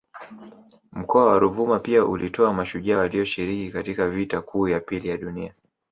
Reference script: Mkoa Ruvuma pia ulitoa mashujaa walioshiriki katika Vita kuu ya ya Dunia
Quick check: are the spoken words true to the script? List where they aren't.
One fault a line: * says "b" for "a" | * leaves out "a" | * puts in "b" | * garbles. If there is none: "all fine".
* puts in "wa"
* puts in "pili"